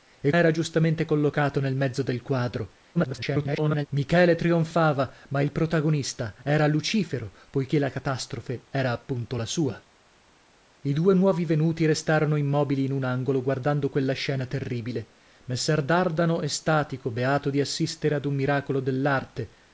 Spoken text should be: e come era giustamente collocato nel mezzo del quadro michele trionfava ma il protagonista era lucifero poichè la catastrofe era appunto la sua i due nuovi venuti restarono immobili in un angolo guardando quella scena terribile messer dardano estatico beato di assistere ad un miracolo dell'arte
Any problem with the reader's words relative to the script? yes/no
yes